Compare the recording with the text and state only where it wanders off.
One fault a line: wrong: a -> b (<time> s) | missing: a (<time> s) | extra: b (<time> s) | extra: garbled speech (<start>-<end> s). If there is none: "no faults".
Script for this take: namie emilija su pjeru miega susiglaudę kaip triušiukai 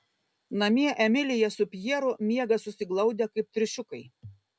no faults